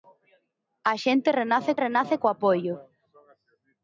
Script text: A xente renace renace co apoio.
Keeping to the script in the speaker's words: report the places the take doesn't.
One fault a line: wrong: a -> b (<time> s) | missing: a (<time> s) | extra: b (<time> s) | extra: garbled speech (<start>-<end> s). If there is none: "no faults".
no faults